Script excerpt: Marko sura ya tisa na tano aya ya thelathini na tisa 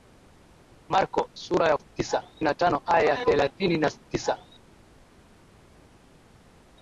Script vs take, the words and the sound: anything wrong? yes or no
no